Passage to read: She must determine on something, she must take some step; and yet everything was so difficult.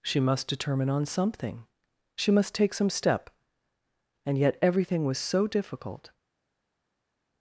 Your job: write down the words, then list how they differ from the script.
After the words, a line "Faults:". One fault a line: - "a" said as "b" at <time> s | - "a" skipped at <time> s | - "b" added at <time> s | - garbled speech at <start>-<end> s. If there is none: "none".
She must determine on something, she must take some step; and yet everything was so difficult.
Faults:
none